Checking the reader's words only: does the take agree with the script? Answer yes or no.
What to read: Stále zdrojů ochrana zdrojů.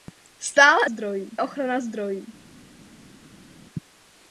yes